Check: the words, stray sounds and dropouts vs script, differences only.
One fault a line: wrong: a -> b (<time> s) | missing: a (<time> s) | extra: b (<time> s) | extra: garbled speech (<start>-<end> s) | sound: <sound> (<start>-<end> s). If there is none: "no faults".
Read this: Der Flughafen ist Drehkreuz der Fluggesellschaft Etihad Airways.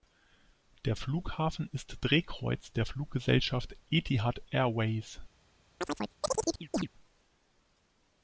sound: chirp (5.8-6.9 s)